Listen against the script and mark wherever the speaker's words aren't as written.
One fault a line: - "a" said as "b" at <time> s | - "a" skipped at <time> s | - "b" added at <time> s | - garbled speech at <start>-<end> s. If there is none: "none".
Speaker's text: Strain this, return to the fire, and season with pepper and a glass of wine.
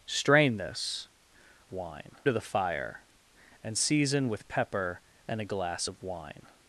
- "return" said as "wine" at 1.7 s